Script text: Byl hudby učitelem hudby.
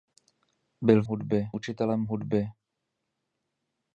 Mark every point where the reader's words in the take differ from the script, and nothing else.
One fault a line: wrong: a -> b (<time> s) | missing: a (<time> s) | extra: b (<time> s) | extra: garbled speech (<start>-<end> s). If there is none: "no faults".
no faults